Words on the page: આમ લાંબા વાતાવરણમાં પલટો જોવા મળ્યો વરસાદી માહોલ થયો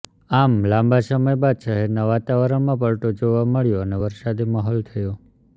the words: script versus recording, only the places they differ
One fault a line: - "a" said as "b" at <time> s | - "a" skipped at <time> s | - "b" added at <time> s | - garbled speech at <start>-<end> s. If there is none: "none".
- "સમય બાદ શહેરના" added at 1.1 s
- "અને" added at 3.9 s